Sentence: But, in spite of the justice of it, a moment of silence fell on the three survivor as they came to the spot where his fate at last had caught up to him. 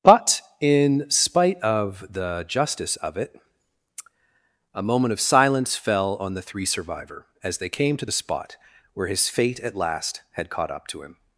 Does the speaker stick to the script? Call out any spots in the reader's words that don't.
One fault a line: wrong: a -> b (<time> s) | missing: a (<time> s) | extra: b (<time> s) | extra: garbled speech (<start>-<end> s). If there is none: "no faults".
no faults